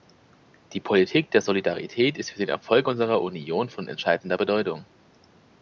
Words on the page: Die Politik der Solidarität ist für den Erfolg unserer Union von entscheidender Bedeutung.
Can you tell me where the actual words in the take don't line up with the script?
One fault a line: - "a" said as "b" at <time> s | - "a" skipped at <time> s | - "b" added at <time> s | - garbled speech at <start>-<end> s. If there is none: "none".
none